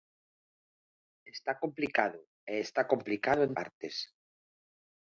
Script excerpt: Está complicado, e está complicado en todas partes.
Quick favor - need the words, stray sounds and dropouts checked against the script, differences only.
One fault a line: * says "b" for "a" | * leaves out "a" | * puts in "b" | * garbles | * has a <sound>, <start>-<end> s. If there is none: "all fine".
* leaves out "todas"